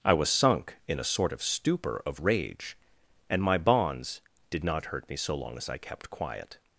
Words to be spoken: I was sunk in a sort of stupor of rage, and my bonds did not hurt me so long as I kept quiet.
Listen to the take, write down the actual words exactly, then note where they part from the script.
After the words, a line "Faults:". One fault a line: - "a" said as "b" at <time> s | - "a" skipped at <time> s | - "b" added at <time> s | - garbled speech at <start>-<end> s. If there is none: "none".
I was sunk in a sort of stupor of rage, and my bonds did not hurt me so long as I kept quiet.
Faults:
none